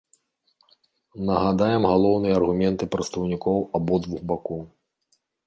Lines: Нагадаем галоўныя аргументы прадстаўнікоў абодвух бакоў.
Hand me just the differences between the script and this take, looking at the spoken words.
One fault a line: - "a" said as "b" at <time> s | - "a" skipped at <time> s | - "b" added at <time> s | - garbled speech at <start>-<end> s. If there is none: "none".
none